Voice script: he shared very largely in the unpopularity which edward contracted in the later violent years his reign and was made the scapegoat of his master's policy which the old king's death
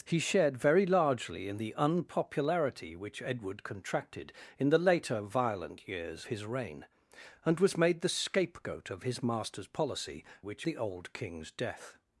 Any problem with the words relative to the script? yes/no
no